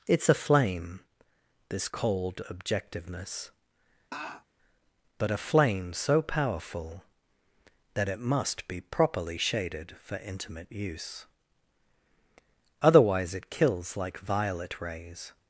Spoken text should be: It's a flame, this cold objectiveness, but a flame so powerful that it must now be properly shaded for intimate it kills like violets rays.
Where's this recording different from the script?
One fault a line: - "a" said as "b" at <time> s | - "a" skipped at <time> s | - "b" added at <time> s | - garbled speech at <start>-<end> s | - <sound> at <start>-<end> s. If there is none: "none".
- laugh at 4.1-4.4 s
- "now" skipped at 8.7 s
- "use Otherwise" added at 10.7 s
- "violets" said as "violet" at 14.2 s